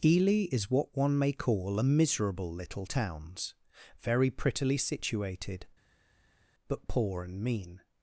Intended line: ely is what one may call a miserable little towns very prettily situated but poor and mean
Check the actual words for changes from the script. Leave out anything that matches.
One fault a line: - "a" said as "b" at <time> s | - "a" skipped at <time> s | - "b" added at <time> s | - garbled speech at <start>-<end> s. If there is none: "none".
none